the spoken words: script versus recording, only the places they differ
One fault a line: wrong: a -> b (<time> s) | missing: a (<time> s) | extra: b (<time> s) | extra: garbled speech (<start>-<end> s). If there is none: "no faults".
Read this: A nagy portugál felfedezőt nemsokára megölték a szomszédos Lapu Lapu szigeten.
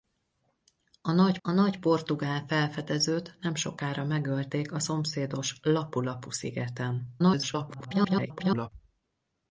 extra: a nagy (1.4 s)
extra: garbled speech (7.2-8.7 s)